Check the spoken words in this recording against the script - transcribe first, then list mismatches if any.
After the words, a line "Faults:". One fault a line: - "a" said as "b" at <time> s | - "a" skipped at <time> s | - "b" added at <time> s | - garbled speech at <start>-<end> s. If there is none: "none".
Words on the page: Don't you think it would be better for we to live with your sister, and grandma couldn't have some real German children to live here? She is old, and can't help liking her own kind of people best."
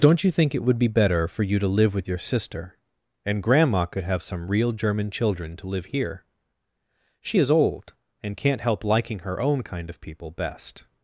Don't you think it would be better for you to live with your sister, and grandma could have some real German children to live here? She is old, and can't help liking her own kind of people best."
Faults:
- "we" said as "you" at 1.4 s
- "couldn't" said as "could" at 3.9 s